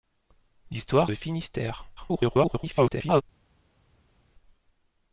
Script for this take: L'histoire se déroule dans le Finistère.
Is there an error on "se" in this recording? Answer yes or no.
yes